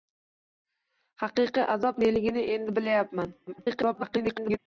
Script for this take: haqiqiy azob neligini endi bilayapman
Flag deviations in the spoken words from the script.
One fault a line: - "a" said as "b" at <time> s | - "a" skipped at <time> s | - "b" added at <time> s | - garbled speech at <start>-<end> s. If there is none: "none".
- garbled speech at 3.5-4.6 s